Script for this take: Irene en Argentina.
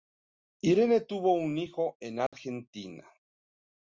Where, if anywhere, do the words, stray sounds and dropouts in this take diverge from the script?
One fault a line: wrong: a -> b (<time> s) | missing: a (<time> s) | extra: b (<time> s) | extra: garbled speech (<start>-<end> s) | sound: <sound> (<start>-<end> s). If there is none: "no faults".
extra: tuvo un hijo (1.0 s)
sound: dropout (2.3-2.3 s)